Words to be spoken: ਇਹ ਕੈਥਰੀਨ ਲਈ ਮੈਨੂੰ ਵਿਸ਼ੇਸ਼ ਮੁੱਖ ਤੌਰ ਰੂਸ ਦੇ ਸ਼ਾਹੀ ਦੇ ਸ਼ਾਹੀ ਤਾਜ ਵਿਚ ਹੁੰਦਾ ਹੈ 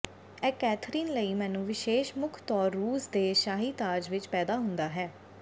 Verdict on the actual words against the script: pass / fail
fail